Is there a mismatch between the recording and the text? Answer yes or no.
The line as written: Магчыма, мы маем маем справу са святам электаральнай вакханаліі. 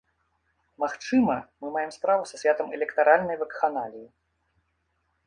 yes